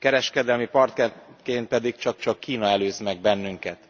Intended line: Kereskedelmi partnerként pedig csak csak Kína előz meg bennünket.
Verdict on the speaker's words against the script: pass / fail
pass